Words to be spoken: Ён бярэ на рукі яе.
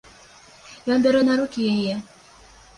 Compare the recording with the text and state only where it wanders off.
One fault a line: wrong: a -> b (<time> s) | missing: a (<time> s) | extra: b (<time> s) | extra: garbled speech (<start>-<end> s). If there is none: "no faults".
no faults